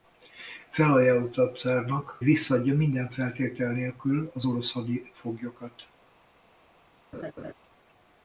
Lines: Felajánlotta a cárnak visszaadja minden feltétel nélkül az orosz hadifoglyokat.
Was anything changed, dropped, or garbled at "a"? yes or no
no